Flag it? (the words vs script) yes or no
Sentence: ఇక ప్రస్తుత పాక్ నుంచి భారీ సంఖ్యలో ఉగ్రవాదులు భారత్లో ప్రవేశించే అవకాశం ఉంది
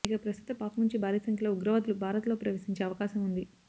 no